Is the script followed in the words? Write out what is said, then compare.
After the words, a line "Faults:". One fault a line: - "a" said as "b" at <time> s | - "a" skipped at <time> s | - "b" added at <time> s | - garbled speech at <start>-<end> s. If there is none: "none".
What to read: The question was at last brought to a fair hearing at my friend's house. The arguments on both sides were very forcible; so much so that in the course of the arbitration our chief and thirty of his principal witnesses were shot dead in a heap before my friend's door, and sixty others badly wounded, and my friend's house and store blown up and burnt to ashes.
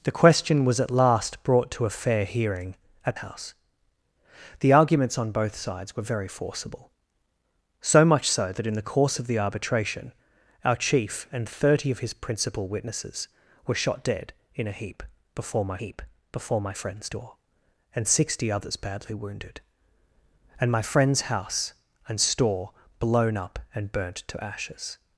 The question was at last brought to a fair hearing at house. The arguments on both sides were very forcible; so much so that in the course of the arbitration our chief and thirty of his principal witnesses were shot dead in a heap before my heap before my friend's door, and sixty others badly wounded, and my friend's house and store blown up and burnt to ashes.
Faults:
- "my friend's" skipped at 3.2 s
- "heap before my" added at 15.8 s